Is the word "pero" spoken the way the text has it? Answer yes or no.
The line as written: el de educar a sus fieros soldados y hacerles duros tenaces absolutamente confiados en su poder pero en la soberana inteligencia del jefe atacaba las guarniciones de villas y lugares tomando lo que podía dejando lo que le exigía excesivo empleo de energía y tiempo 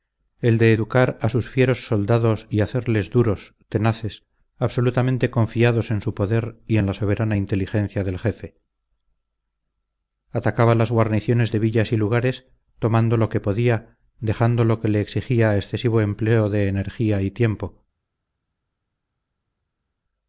no